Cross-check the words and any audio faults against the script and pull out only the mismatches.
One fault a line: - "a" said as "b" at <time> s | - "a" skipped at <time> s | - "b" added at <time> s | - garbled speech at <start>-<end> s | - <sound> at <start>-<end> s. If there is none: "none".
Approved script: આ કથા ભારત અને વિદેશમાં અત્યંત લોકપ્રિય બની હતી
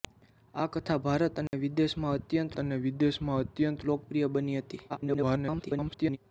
- dropout at 1.5-1.5 s
- "અને વિદેશમાં અત્યંત" added at 2.6 s
- garbled speech at 4.9-6.2 s